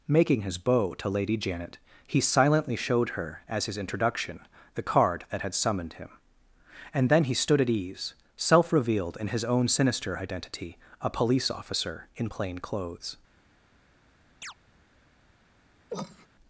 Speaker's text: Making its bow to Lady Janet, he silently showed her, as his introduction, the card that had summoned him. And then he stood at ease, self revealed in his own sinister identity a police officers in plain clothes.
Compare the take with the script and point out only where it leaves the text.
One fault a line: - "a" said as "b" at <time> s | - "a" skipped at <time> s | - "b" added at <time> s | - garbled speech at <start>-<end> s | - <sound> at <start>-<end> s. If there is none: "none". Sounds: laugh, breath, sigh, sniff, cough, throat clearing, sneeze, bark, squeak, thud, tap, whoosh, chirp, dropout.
- "its" said as "his" at 0.4 s
- "officers" said as "officer" at 11.5 s
- chirp at 14.4-14.5 s
- cough at 15.9-16.3 s